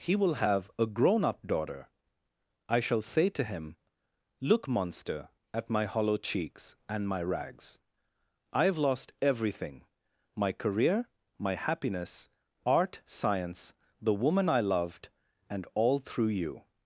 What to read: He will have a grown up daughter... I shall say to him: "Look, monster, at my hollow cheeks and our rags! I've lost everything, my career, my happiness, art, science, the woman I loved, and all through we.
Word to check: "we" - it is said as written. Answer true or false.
false